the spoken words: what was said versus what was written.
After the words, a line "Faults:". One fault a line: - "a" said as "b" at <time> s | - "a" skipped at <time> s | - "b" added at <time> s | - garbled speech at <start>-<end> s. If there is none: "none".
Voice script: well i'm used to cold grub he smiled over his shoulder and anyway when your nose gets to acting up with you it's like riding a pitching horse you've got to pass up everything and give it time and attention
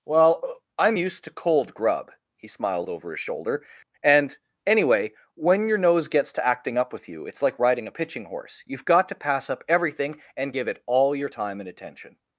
well i'm used to cold grub he smiled over his shoulder and anyway when your nose gets to acting up with you it's like riding a pitching horse you've got to pass up everything and give it all your time and attention
Faults:
- "all your" added at 10.9 s